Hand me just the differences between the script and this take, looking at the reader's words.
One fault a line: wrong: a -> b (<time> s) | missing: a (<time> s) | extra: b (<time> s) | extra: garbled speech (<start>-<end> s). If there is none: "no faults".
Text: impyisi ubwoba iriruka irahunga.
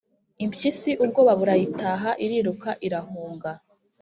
extra: burayitaha (1.4 s)